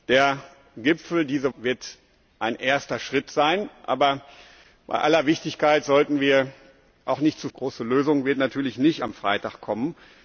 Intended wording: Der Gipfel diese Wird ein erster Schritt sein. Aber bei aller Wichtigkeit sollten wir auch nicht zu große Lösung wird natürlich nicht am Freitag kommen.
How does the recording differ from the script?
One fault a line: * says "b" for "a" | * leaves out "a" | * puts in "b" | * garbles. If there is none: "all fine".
all fine